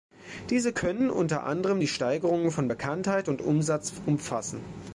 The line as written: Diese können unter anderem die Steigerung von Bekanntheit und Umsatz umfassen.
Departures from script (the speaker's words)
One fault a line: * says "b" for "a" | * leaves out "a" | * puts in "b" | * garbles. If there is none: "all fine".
all fine